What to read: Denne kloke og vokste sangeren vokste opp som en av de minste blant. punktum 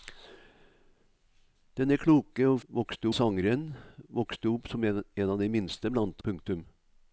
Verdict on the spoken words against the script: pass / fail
pass